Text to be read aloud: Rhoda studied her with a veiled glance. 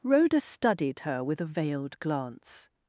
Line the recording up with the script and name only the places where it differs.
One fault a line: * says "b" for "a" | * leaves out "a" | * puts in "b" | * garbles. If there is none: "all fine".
all fine